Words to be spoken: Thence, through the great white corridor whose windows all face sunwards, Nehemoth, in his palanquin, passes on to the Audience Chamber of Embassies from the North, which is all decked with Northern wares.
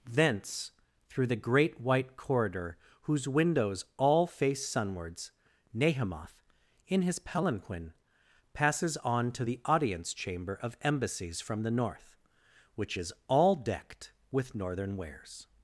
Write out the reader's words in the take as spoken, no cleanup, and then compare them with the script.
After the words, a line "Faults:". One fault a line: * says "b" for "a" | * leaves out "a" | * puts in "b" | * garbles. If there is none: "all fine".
Thence, through the great white corridor whose windows all face sunwards, Nehemoth, in his palanquin, passes on to the Audience Chamber of Embassies from the North, which is all decked with Northern wares.
Faults:
all fine